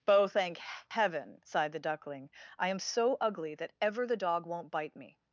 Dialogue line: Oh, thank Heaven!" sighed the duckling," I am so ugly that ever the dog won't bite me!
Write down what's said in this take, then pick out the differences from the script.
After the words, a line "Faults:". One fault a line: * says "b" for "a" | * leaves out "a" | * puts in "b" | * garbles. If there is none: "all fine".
Oh, thank Heaven!" sighed the duckling," I am so ugly that ever the dog won't bite me!
Faults:
all fine